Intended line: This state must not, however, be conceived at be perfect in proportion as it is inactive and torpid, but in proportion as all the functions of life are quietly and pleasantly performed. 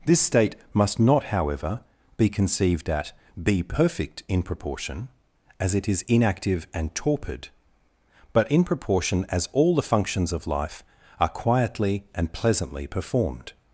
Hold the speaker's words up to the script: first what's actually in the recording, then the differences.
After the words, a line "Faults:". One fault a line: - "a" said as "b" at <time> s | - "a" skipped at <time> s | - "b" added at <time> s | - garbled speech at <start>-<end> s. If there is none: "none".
This state must not, however, be conceived at be perfect in proportion as it is inactive and torpid, but in proportion as all the functions of life are quietly and pleasantly performed.
Faults:
none